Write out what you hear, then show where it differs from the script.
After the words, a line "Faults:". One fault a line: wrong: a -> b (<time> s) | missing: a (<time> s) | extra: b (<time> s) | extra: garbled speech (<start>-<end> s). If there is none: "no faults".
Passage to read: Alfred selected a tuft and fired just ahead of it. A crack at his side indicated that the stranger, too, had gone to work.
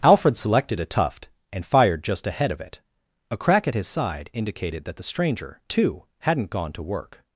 Alfred selected a tuft and fired just ahead of it. A crack at his side indicated that the stranger, too, hadn't gone to work.
Faults:
wrong: had -> hadn't (6.2 s)